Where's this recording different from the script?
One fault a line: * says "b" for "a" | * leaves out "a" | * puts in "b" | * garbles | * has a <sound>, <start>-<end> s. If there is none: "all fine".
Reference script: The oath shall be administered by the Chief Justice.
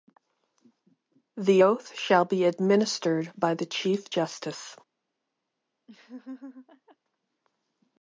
* has a laugh, 5.9-7.0 s